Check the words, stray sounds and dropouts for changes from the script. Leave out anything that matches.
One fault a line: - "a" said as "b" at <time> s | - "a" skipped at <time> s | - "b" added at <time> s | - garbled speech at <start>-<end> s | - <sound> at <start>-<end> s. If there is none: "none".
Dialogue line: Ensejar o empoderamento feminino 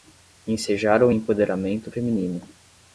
none